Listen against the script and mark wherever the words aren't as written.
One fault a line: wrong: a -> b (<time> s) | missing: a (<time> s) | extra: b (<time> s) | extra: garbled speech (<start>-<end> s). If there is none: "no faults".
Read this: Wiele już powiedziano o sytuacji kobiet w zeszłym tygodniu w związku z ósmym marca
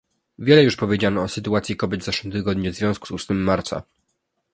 no faults